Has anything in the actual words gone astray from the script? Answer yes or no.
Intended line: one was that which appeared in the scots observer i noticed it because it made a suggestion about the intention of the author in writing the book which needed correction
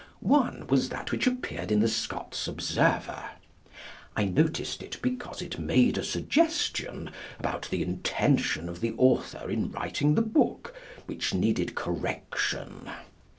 no